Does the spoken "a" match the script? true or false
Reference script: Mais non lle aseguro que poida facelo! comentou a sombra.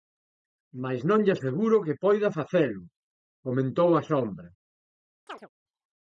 true